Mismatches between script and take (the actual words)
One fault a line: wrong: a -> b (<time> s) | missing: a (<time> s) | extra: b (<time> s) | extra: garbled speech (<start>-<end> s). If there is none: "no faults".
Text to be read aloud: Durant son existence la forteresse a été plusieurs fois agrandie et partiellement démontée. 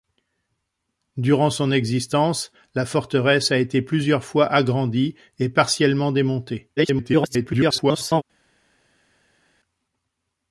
extra: garbled speech (6.8-8.2 s)